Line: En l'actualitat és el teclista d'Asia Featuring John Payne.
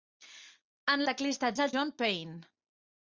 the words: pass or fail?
fail